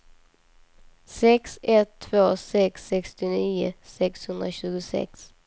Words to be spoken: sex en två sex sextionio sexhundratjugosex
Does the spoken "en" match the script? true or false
false